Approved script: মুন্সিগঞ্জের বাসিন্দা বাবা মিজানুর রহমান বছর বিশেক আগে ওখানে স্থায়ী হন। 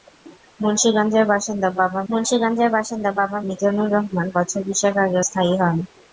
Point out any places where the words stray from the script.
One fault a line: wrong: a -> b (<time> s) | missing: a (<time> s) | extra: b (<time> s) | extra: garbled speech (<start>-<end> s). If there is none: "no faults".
extra: মুন্সিগঞ্জের বাসিন্দা বাবা (2.1 s)
missing: ওখানে (5.2 s)